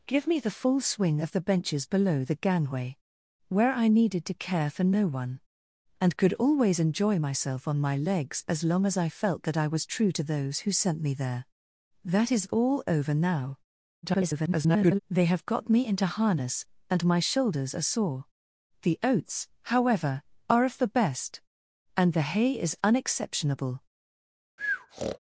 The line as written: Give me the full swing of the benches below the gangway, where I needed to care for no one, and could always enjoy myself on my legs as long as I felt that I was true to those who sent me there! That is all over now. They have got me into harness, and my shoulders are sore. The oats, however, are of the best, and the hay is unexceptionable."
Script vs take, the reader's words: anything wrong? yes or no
yes